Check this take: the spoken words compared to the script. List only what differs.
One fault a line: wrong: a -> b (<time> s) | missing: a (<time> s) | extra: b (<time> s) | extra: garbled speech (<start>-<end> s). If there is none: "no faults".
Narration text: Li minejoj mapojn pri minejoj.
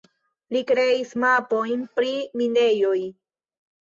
wrong: minejoj -> kreis (0.7 s)